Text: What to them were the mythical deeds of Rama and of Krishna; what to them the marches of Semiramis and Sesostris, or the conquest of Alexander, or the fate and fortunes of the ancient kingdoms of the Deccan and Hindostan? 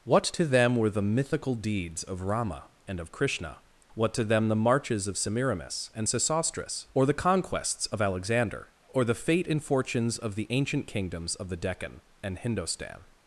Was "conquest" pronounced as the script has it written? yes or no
no